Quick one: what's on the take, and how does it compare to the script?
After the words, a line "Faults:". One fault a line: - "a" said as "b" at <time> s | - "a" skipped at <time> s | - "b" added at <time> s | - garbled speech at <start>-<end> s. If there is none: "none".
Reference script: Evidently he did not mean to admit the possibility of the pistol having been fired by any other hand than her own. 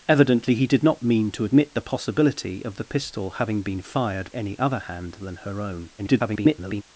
Evidently he did not mean to admit the possibility of the pistol having been fired any other hand than her own. [garbled]
Faults:
- "by" skipped at 4.3 s
- garbled speech at 6.0-6.8 s